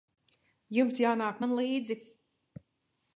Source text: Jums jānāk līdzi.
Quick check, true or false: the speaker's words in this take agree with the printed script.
false